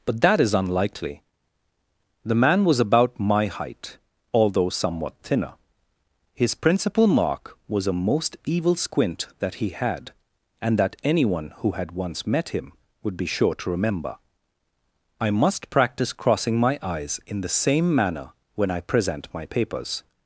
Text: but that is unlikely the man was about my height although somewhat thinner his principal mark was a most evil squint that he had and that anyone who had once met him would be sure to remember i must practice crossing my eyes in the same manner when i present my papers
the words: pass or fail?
pass